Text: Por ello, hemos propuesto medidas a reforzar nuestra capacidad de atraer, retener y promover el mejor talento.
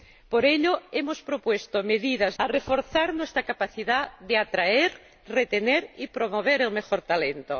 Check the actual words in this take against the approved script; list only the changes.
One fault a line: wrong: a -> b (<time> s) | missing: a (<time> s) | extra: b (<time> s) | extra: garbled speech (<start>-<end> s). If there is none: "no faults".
no faults